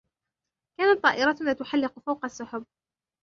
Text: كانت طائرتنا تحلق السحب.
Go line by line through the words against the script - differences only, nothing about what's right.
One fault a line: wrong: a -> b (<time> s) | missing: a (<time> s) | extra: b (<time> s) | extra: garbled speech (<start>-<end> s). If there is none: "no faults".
extra: فوق (2.0 s)